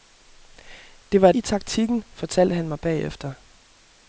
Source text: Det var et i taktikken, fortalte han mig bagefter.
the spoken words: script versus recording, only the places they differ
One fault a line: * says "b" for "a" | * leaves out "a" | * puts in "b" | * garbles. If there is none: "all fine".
all fine